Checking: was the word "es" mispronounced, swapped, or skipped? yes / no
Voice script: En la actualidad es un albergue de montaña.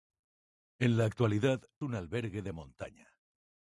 yes